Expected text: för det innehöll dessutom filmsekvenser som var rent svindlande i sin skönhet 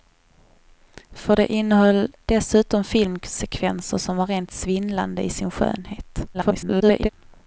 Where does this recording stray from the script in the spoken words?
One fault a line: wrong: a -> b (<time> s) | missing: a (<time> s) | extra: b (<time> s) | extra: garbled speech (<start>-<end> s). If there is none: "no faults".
extra: garbled speech (6.3-7.1 s)